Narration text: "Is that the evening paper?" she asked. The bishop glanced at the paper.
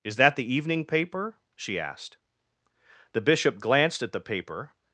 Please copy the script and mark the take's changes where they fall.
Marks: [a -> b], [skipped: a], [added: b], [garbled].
"Is that the evening paper?" she asked. The bishop glanced at the paper.